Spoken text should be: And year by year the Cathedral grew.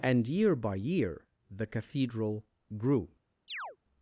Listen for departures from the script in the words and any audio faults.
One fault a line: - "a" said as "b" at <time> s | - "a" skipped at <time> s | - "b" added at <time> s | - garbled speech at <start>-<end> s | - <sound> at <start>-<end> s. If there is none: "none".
- chirp at 3.5-3.8 s